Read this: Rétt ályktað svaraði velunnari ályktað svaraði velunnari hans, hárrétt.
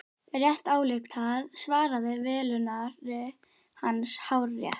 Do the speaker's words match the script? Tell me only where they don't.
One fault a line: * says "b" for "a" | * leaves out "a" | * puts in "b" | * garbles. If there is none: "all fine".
* leaves out "ályktað svaraði velunnari"